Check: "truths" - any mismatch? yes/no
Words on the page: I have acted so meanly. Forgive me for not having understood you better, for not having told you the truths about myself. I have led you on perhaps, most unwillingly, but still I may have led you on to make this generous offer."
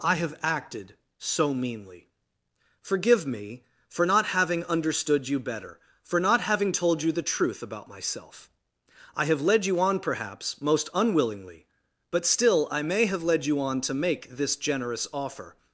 yes